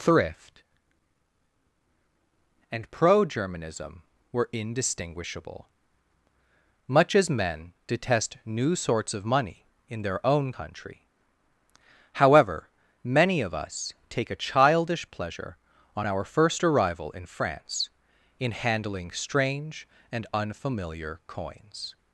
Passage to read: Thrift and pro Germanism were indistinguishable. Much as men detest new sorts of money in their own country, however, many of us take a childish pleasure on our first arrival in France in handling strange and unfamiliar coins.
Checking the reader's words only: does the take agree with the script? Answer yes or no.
yes